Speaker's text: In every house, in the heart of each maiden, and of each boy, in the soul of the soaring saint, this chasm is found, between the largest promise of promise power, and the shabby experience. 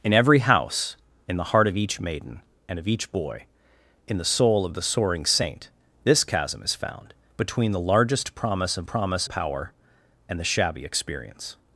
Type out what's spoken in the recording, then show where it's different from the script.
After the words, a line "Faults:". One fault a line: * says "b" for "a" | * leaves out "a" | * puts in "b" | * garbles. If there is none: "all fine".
In every house, in the heart of each maiden, and of each boy, in the soul of the soaring saint, this chasm is found, between the largest promise of promise power, and the shabby experience.
Faults:
all fine